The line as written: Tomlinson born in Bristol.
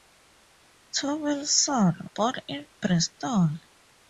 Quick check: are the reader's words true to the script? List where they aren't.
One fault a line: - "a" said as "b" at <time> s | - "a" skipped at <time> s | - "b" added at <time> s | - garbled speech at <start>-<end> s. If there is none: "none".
none